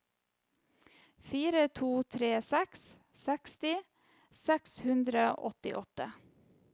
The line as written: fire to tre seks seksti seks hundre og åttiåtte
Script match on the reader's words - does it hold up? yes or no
yes